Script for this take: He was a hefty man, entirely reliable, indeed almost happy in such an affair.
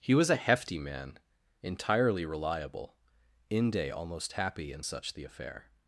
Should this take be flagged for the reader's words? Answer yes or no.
yes